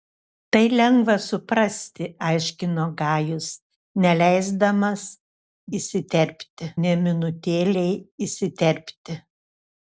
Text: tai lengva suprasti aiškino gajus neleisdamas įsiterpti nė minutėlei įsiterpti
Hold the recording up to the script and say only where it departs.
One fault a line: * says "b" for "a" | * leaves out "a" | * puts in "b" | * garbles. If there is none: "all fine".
all fine